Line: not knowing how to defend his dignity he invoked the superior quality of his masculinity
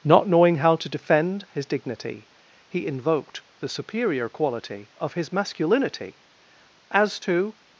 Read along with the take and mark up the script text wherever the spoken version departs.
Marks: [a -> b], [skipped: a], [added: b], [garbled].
not knowing how to defend his dignity he invoked the superior quality of his masculinity [added: as to]